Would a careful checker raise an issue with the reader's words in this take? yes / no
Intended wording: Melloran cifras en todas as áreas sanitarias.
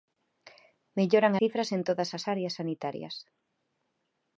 no